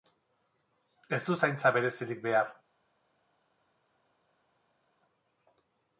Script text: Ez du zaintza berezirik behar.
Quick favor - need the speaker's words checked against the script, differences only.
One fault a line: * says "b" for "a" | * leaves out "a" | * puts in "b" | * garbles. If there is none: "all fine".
all fine